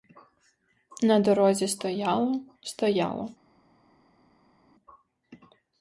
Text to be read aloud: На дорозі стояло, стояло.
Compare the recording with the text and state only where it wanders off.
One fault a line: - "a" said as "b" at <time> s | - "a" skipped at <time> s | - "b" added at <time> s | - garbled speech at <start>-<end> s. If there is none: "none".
none